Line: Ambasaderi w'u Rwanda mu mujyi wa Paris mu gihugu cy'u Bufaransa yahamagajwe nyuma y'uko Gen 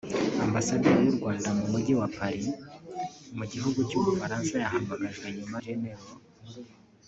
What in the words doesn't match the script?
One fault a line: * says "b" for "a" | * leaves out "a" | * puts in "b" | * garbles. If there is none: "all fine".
* leaves out "y'uko"